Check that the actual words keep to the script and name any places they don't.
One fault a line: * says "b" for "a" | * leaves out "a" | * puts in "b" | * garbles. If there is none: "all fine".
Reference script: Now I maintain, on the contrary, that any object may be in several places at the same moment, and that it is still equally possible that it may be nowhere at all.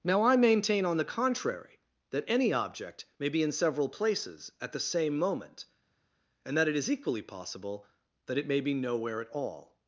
* leaves out "still"